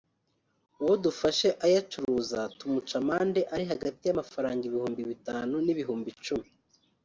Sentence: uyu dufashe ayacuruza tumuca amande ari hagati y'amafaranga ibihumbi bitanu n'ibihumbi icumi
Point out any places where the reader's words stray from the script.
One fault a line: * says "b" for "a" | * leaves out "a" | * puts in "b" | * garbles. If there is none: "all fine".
* says "uwo" for "uyu"